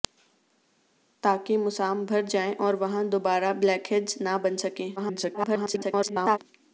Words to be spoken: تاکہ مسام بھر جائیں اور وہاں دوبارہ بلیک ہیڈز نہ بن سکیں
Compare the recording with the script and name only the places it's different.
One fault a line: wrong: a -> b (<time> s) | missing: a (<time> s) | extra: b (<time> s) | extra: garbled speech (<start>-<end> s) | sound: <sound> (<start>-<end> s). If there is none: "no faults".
extra: garbled speech (5.0-6.4 s)